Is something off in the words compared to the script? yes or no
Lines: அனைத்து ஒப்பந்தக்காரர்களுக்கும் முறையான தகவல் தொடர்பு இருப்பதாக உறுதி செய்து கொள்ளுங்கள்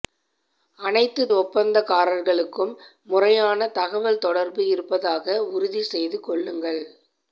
no